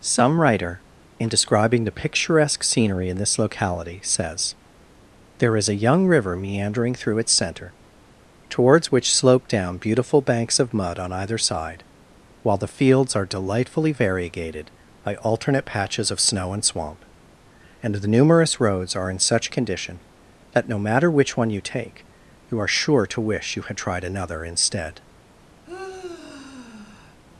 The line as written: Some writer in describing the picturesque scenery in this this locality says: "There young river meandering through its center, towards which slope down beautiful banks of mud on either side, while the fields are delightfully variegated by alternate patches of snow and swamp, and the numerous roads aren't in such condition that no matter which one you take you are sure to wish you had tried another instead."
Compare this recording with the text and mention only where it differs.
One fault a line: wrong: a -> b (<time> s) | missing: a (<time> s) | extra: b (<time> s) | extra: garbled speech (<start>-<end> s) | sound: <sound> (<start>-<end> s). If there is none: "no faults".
missing: this (3.4 s)
extra: is a (5.6 s)
wrong: aren't -> are (19.0 s)
sound: sigh (25.7-27.2 s)